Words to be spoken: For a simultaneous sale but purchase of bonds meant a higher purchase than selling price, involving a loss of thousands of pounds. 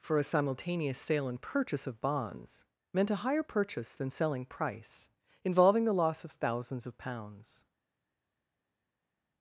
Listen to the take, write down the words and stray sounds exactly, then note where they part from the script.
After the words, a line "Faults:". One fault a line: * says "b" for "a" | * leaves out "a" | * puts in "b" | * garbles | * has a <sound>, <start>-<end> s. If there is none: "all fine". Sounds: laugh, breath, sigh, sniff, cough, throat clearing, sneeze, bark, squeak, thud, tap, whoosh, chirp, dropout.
For a simultaneous sale and purchase of bonds meant a higher purchase than selling price, involving the loss of thousands of pounds.
Faults:
* says "and" for "but"
* says "the" for "a"